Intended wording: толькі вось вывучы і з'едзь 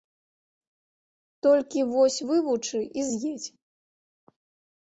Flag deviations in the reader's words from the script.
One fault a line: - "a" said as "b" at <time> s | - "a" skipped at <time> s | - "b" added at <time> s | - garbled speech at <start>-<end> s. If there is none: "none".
none